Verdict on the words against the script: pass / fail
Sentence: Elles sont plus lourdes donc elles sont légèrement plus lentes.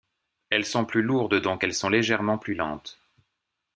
pass